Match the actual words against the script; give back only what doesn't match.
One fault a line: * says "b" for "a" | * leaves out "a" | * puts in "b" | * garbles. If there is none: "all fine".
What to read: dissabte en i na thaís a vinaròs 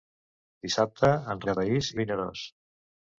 all fine